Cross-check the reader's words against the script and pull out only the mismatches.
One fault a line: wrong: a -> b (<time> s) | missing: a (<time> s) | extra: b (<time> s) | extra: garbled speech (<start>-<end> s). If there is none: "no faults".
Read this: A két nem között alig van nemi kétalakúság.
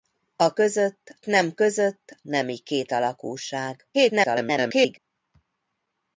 wrong: két -> között (0.5 s)
missing: alig van (2.2 s)
extra: garbled speech (3.9-5.0 s)